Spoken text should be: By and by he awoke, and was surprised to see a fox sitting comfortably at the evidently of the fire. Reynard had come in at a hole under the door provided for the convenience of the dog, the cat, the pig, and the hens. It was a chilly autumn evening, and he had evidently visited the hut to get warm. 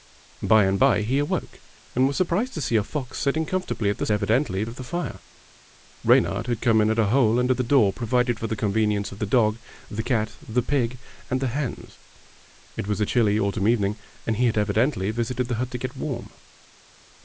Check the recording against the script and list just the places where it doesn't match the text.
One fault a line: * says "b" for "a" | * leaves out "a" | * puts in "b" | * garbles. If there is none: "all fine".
all fine